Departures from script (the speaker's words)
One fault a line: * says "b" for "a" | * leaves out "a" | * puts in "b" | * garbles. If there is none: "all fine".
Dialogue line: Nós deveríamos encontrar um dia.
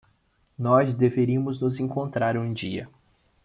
* puts in "nos"